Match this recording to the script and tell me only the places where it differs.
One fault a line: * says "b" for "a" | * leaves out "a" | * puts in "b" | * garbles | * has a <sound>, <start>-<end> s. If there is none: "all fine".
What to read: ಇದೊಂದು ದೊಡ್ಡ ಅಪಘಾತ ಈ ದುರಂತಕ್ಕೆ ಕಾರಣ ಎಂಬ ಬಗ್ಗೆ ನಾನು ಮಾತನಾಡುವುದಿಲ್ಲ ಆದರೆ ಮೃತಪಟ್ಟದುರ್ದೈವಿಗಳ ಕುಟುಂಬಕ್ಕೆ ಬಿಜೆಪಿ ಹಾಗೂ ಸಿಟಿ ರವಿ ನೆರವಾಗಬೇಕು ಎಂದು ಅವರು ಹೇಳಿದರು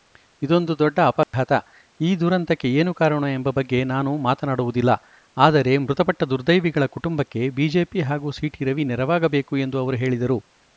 * has a dropout, 1.2-1.3 s
* puts in "ಏನು"